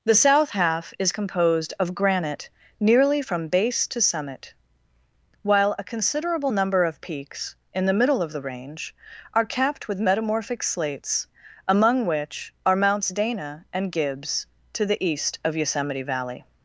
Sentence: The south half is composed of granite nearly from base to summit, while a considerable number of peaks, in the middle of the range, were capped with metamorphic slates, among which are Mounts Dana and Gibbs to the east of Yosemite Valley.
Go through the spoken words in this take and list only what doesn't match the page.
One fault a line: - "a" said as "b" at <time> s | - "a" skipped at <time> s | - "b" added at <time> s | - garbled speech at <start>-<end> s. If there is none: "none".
- "were" said as "are" at 9.3 s